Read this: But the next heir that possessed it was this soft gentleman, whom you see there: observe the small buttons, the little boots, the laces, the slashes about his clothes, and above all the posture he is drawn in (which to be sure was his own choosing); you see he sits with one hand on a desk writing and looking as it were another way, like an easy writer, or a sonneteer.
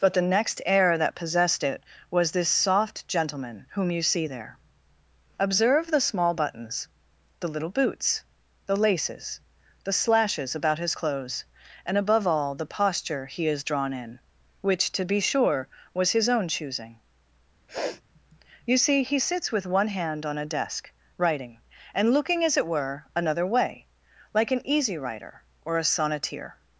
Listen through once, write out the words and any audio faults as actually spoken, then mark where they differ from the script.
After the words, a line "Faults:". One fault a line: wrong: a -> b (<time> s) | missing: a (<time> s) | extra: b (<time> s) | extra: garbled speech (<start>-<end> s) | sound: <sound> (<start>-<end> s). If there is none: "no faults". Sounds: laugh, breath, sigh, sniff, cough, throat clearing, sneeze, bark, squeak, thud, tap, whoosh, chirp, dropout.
But the next heir that possessed it was this soft gentleman, whom you see there: observe the small buttons, the little boots, the laces, the slashes about his clothes, and above all the posture he is drawn in (which to be sure was his own choosing); you see he sits with one hand on a desk writing and looking as it were another way, like an easy writer, or a sonneteer.
Faults:
sound: sniff (17.7-18.0 s)